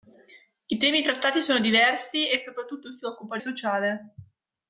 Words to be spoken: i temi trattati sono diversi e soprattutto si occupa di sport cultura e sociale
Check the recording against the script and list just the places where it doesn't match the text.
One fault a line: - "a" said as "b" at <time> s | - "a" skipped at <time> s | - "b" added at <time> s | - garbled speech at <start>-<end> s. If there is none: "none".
- "di sport cultura" skipped at 3.4 s